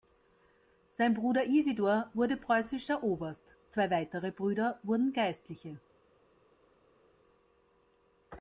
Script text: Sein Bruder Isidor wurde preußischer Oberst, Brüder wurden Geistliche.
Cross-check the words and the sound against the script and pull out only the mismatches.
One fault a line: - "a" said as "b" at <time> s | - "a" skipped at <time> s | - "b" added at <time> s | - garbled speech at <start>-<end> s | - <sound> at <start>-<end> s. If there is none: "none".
- "zwei weitere" added at 3.7 s